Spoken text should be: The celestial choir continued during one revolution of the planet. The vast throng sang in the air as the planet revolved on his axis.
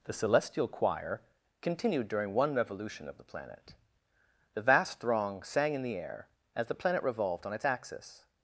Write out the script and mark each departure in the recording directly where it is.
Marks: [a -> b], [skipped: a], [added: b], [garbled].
The celestial choir continued during one revolution of the planet. The vast throng sang in the air as the planet revolved on [his -> its] axis.